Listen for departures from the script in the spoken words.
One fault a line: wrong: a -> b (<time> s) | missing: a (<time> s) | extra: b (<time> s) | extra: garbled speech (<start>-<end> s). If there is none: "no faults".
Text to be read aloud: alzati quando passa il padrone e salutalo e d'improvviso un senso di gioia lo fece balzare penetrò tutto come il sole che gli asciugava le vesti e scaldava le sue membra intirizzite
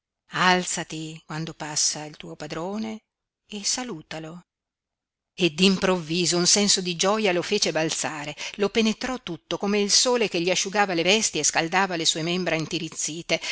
extra: tuo (2.2 s)
extra: lo (8.6 s)